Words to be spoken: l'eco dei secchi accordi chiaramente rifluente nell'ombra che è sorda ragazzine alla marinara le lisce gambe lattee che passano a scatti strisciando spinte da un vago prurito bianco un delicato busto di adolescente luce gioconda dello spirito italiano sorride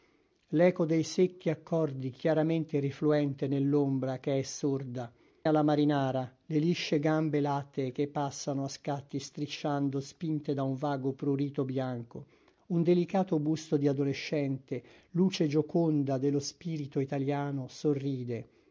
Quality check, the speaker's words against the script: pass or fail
fail